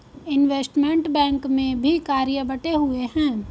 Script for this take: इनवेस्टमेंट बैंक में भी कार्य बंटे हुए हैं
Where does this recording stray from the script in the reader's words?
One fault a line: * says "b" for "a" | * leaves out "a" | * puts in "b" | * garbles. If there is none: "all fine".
all fine